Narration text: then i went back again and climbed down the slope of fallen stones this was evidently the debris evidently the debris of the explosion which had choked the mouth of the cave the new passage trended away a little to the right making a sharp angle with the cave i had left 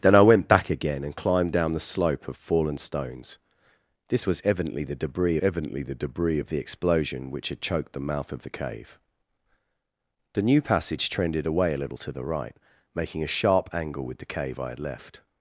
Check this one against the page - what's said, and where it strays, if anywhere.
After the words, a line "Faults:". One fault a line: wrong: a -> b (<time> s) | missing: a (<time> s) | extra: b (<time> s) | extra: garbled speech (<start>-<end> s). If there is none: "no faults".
then i went back again and climbed down the slope of fallen stones this was evidently the debris evidently the debris of the explosion which had choked the mouth of the cave the new passage trended away a little to the right making a sharp angle with the cave i had left
Faults:
no faults